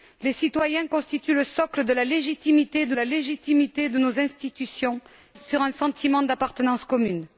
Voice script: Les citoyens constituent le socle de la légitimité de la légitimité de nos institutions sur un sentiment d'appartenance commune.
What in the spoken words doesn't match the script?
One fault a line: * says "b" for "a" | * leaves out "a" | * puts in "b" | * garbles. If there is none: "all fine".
all fine